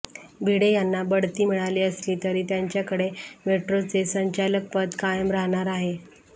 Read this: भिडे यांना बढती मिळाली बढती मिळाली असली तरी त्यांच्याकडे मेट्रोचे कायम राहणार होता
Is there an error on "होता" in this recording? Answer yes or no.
yes